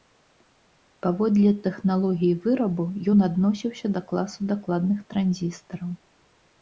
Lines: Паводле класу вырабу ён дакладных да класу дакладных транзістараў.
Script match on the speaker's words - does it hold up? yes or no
no